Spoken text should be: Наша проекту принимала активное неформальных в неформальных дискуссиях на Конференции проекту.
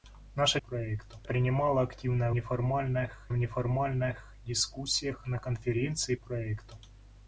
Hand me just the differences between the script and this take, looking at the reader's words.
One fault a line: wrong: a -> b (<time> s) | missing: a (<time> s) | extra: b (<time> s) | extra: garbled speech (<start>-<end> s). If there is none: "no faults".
no faults